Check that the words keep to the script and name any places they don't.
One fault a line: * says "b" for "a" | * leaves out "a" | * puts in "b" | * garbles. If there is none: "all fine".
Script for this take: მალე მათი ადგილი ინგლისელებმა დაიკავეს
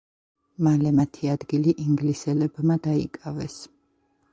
all fine